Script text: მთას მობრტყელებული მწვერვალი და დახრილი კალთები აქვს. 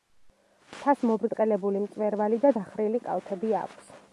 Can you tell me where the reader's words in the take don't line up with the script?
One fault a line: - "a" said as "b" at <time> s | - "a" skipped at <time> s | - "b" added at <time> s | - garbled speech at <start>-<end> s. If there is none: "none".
none